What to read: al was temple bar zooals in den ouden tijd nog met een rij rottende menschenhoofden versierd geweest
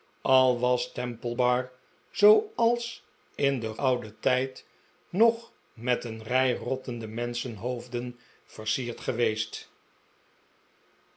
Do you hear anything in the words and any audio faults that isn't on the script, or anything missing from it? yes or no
no